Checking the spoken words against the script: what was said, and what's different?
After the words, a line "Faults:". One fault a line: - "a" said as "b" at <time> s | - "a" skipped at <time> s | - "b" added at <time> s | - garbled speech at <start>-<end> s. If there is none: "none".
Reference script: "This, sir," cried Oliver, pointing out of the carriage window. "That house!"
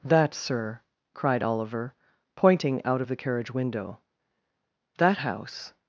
"That, sir," cried Oliver, pointing out of the carriage window. "That house!"
Faults:
- "This" said as "That" at 0.0 s